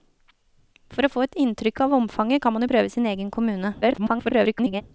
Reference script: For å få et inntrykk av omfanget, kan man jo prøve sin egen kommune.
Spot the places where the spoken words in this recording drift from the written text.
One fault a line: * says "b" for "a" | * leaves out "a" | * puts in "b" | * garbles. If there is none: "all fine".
* garbles